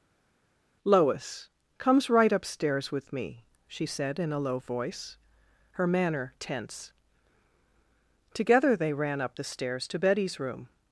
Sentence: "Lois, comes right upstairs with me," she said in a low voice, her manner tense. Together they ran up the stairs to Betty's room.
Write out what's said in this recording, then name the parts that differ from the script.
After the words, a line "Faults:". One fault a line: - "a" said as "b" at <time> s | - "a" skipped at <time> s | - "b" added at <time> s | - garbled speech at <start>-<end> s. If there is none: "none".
"Lois, comes right upstairs with me," she said in a low voice, her manner tense. Together they ran up the stairs to Betty's room.
Faults:
none